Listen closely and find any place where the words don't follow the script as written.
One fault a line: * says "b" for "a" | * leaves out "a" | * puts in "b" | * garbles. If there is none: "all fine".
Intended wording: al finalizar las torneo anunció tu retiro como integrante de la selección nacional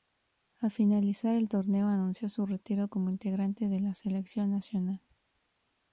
* says "el" for "las"
* says "su" for "tu"